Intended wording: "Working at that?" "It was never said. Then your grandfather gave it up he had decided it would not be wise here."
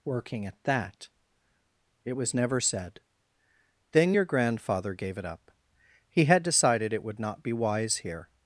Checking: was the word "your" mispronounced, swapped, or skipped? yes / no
no